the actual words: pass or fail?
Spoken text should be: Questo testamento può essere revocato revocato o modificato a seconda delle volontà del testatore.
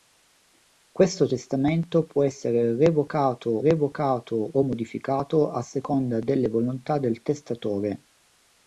pass